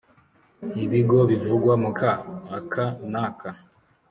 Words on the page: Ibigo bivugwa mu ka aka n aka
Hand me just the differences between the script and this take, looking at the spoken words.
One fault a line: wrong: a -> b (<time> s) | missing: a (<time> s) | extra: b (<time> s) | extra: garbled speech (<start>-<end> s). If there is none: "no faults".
no faults